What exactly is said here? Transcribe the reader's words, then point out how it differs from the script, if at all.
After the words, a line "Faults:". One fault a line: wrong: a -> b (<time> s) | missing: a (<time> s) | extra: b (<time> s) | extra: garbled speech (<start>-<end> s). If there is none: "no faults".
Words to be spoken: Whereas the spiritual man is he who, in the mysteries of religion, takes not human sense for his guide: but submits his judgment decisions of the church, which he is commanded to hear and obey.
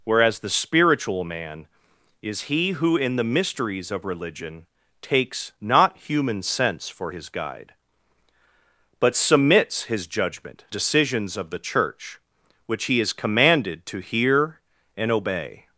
Whereas the spiritual man is he who, in the mysteries of religion, takes not human sense for his guide: but submits his judgment decisions of the church, which he is commanded to hear and obey.
Faults:
no faults